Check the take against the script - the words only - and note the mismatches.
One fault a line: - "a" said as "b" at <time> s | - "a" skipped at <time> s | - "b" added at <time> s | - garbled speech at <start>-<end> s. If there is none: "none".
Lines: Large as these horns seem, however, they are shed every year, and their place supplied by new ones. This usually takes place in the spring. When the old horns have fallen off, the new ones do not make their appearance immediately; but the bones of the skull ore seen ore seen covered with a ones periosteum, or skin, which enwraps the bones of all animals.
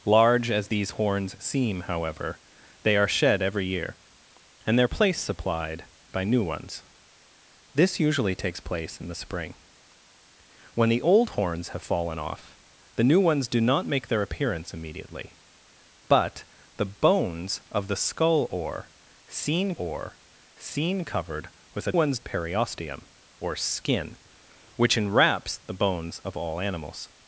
none